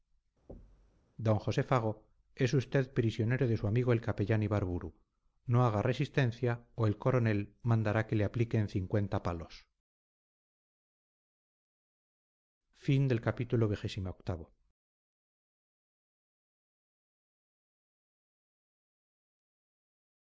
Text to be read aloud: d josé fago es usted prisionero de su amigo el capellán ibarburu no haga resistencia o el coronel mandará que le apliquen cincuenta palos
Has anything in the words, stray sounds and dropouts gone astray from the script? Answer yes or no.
yes